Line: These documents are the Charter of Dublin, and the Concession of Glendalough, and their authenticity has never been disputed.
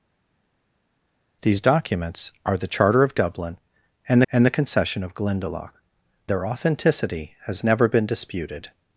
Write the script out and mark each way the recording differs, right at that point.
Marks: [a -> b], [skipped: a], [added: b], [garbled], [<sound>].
These documents are the Charter of Dublin, and [added: and] the Concession of Glendalough, [skipped: and] their authenticity has never been disputed.